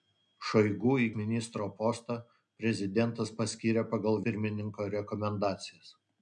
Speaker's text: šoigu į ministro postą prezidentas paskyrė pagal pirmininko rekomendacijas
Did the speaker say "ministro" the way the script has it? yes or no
yes